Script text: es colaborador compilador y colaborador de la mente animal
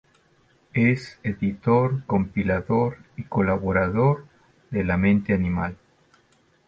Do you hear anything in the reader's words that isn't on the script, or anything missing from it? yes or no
yes